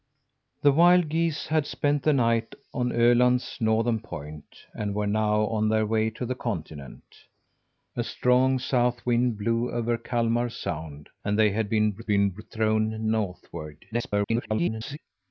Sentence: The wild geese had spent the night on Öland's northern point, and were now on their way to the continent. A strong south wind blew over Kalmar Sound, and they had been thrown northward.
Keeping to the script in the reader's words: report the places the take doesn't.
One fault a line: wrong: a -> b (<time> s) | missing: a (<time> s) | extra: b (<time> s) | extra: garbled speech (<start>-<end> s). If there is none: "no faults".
extra: been (12.1 s)
extra: garbled speech (13.9-15.0 s)